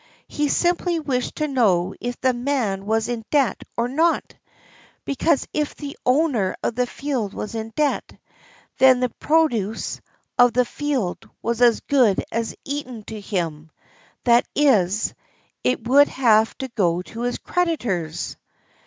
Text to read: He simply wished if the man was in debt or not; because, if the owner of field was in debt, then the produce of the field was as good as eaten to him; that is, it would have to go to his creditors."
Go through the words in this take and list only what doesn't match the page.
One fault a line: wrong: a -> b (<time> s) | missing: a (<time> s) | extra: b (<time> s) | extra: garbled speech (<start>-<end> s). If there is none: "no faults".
extra: to know (1.4 s)
extra: the (6.7 s)